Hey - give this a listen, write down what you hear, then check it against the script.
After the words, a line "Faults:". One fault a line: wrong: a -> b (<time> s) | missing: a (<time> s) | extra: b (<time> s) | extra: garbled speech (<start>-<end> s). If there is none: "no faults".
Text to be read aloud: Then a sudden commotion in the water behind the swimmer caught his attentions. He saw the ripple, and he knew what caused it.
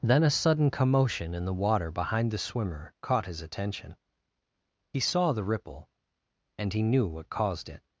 Then a sudden commotion in the water behind the swimmer caught his attention. He saw the ripple, and he knew what caused it.
Faults:
wrong: attentions -> attention (3.4 s)